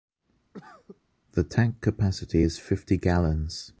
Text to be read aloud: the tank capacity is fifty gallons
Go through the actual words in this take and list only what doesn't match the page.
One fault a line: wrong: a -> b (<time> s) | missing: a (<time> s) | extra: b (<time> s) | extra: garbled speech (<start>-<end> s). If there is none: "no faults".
no faults